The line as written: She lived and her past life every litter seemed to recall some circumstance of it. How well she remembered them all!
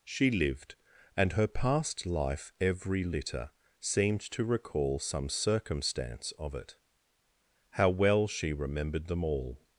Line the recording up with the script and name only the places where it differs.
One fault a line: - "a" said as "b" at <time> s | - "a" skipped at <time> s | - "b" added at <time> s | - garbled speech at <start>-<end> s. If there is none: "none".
none